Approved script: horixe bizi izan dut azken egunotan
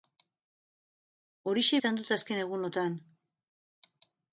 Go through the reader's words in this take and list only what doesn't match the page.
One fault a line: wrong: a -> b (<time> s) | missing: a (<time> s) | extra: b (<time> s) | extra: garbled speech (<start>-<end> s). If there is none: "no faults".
missing: bizi (1.8 s)